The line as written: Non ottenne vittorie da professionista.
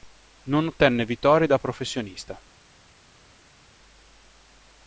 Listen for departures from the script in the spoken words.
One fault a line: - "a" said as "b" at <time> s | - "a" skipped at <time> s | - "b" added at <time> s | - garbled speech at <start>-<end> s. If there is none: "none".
none